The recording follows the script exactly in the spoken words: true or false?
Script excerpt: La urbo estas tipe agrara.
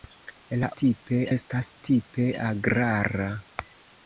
false